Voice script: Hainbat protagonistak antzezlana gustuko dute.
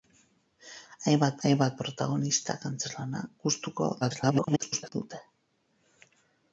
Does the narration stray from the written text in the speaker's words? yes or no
yes